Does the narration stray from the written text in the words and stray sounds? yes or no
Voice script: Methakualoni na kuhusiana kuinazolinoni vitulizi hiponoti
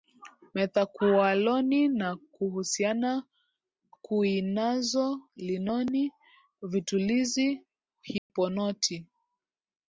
yes